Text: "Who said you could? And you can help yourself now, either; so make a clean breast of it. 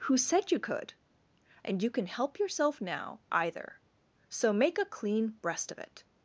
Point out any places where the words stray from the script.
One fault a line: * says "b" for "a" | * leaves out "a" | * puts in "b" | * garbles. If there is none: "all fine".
all fine